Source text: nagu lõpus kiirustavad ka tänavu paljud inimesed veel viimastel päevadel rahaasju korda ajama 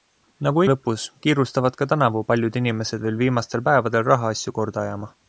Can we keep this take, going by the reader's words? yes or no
yes